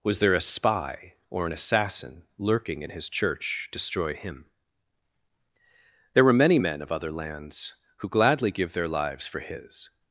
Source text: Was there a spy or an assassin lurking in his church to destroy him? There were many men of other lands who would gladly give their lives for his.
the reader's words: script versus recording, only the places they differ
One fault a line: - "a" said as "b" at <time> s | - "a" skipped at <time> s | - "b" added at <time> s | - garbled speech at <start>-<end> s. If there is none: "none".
- "to" skipped at 3.7 s
- "would" skipped at 8.1 s